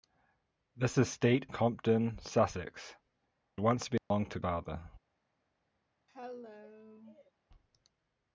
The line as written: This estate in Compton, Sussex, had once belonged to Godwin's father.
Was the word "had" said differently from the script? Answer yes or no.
yes